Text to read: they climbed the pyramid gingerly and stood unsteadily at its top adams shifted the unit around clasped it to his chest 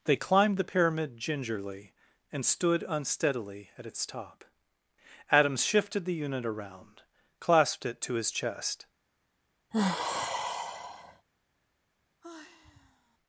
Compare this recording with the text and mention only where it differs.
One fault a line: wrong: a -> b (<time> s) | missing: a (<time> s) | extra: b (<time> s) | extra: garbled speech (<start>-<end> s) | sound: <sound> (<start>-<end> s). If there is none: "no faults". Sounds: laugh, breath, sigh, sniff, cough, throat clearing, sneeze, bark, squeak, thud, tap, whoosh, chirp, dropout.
sound: sigh (9.7-11.3 s)
sound: sigh (12.2-13.2 s)